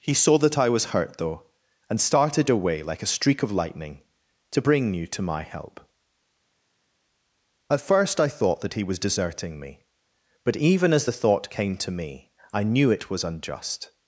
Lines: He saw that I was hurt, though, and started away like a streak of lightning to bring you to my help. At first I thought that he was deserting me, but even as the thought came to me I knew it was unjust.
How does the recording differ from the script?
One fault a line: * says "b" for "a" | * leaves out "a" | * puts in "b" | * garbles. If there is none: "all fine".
all fine